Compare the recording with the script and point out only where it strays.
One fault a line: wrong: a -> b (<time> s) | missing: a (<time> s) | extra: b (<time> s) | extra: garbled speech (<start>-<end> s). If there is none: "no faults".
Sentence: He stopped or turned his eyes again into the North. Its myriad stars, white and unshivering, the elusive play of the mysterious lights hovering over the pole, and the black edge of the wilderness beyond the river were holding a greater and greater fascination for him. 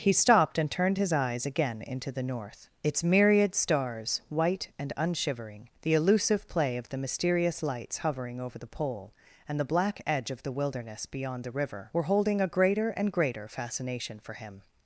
wrong: or -> and (0.6 s)